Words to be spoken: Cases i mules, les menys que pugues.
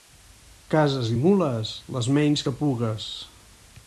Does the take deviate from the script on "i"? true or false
false